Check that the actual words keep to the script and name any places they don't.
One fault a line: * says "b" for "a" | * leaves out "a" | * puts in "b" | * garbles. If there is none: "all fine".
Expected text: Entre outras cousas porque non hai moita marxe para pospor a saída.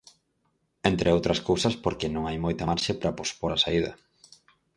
all fine